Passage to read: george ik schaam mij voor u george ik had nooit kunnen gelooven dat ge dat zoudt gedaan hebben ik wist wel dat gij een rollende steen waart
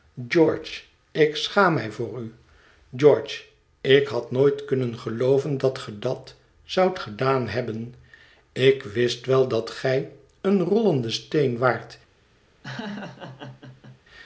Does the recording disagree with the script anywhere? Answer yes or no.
no